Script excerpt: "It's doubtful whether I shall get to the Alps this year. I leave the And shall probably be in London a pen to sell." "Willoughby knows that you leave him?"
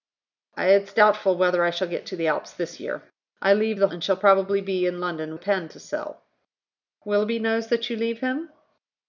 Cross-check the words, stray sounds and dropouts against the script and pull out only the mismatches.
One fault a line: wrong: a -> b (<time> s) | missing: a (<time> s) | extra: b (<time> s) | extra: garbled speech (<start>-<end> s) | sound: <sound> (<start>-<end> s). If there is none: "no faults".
no faults